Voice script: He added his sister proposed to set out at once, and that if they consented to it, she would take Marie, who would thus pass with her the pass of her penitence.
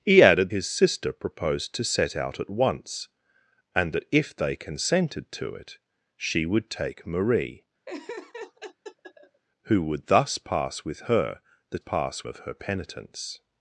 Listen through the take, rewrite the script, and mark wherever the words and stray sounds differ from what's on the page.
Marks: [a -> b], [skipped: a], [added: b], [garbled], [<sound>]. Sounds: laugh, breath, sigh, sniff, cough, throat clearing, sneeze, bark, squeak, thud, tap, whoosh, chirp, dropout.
He added his sister proposed to set out at once, and that if they consented to it, she would take Marie, [laugh] who would thus pass with her the pass of her penitence.